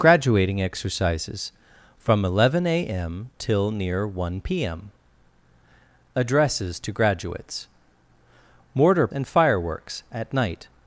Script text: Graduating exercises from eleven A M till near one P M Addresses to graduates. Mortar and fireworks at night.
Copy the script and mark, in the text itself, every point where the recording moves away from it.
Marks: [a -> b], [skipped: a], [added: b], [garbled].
Graduating exercises from eleven A M till near one P M Addresses to graduates. Mortar and fireworks at night.